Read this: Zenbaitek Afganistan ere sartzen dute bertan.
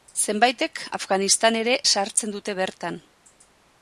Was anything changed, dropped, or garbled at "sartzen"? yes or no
no